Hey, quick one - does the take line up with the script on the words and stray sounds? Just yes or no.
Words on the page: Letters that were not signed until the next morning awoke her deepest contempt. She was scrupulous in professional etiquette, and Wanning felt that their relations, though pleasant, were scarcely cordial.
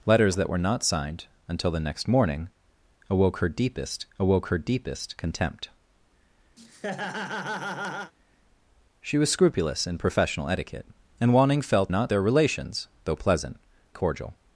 no